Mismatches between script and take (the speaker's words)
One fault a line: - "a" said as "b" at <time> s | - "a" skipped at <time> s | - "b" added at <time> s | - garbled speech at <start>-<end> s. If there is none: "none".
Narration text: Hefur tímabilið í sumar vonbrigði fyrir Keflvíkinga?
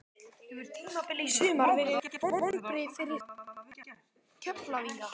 - "verið" added at 1.8 s